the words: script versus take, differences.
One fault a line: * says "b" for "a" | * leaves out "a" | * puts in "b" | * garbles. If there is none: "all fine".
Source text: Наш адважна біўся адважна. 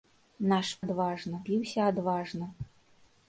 all fine